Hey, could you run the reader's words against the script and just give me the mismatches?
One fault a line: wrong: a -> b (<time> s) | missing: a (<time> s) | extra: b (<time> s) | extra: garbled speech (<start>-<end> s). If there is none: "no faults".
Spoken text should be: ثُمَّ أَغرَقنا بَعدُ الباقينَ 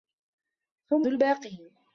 missing: أَغرَقنا بَعدُ (1.1 s)